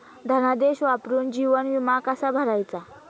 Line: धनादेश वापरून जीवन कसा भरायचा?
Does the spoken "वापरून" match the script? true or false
true